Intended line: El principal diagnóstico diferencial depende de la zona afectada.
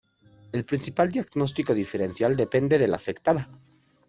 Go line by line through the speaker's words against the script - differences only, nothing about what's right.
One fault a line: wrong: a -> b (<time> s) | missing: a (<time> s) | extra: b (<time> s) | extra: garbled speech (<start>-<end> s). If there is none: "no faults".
missing: zona (3.0 s)